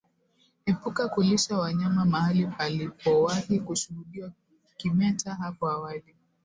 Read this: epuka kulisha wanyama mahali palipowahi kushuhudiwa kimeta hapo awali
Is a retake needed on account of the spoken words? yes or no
no